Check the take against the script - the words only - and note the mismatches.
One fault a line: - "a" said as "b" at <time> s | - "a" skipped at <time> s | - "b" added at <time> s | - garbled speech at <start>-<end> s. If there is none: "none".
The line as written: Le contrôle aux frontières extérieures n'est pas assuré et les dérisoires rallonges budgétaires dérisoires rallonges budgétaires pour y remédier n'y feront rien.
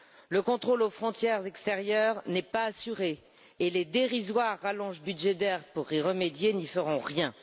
- "dérisoires rallonges budgétaires" skipped at 5.6 s